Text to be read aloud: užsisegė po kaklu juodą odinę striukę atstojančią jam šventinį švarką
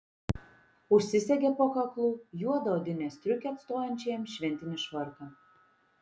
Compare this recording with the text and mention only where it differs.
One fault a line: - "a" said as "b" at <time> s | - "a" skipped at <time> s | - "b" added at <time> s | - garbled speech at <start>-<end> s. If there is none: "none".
none